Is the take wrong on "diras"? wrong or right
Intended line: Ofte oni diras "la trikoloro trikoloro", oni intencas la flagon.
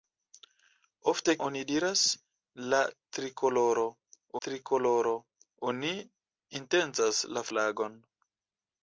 right